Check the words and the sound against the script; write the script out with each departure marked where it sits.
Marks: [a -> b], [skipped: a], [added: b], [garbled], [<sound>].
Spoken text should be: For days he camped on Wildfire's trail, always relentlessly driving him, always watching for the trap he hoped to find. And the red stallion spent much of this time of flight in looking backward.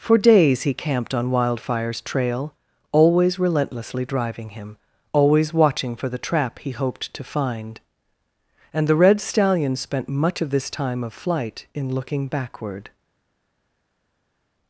For days he camped on Wildfire's trail, always relentlessly driving him, always watching for the trap he hoped to find. And the red stallion spent much of this time of flight in looking backward.